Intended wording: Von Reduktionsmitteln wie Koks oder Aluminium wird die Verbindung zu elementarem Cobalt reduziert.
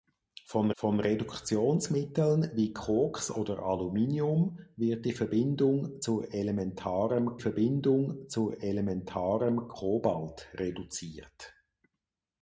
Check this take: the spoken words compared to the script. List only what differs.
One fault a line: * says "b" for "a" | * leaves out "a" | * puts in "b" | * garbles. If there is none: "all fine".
* puts in "von"
* puts in "Verbindung zu elementarem"